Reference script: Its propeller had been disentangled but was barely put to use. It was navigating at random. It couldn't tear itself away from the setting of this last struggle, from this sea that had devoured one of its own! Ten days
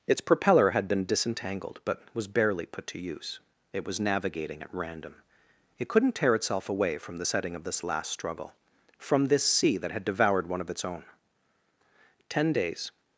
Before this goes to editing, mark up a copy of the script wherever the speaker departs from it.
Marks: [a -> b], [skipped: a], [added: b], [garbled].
Its propeller had been disentangled but was barely put to use. It was navigating at random. It couldn't tear itself away from the setting of this last struggle, from this sea that had devoured one of its own! Ten days